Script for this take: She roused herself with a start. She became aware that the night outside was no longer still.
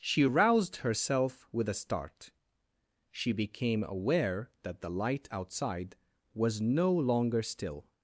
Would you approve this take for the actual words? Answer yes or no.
no